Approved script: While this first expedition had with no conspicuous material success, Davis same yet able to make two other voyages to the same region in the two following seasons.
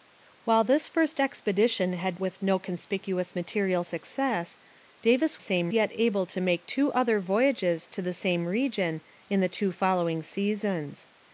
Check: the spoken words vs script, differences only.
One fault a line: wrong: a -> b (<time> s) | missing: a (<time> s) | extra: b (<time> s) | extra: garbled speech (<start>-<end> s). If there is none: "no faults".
no faults